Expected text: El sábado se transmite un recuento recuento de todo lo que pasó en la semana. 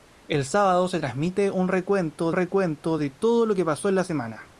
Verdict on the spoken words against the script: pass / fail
pass